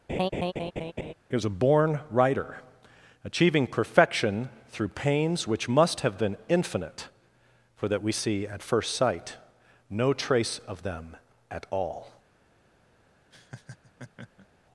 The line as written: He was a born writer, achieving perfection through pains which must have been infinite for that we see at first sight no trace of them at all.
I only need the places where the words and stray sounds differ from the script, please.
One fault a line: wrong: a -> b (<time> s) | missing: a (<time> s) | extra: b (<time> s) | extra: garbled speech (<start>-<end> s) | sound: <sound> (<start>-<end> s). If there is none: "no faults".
sound: laugh (0.1-1.1 s)
sound: laugh (13.3-14.5 s)